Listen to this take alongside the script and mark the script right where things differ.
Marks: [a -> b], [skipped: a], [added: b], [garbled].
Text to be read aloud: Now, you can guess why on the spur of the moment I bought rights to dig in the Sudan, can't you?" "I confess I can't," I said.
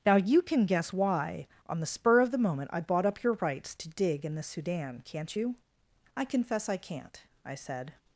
Now, you can guess why on the spur of the moment I bought [added: up your] rights to dig in the Sudan, can't you?" "I confess I can't," I said.